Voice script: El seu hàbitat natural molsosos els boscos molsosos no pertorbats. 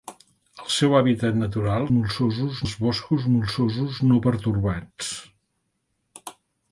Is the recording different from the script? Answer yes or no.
no